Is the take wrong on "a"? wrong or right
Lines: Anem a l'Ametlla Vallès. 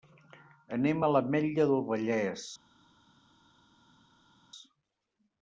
right